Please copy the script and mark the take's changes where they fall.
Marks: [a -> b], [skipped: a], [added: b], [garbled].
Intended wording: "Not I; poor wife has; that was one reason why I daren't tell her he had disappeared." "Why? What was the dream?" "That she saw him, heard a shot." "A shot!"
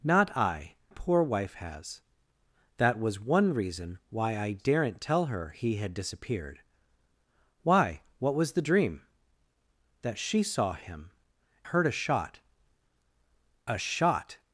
"Not I; poor wife has; that was one reason why I daren't tell her he had disappeared." "Why? What was the dream?" "That she saw him, heard a shot." "A shot!"